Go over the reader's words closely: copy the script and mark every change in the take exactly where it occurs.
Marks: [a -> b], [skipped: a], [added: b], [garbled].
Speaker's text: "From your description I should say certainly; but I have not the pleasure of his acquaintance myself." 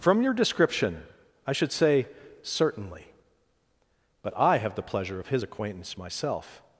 "From your description I should say certainly; but I have [skipped: not] the pleasure of his acquaintance myself."